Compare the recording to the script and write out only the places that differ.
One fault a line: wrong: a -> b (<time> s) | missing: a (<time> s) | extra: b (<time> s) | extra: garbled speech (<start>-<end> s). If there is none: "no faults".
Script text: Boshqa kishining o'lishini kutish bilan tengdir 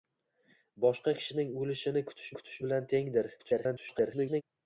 extra: kutish (2.4 s)
extra: garbled speech (3.4-4.4 s)